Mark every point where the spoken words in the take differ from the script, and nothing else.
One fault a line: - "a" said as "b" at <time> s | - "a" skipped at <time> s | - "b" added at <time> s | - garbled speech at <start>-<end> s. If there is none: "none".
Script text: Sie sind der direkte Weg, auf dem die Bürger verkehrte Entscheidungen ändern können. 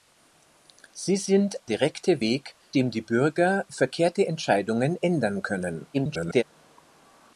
- "der" skipped at 1.6 s
- "auf" skipped at 2.6 s
- garbled speech at 5.9-6.4 s